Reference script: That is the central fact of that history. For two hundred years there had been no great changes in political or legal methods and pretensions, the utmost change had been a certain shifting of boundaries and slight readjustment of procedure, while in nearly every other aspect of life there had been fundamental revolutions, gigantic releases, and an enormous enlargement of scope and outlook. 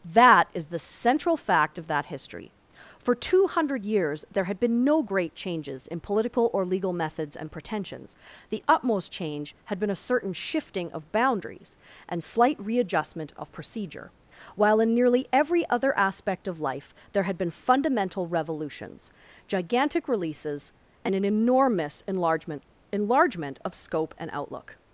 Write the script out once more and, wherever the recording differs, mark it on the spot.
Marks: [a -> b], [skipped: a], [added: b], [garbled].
That is the central fact of that history. For two hundred years there had been no great changes in political or legal methods and pretensions, the utmost change had been a certain shifting of boundaries and slight readjustment of procedure, while in nearly every other aspect of life there had been fundamental revolutions, gigantic releases, and an enormous enlargement [added: enlargement] of scope and outlook.